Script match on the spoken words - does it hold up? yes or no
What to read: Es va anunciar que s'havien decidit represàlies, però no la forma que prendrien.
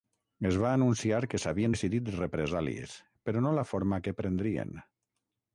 yes